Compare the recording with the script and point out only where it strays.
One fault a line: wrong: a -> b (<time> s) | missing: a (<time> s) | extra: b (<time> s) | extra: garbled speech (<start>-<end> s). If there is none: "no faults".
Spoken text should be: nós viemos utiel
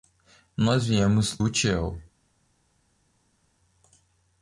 no faults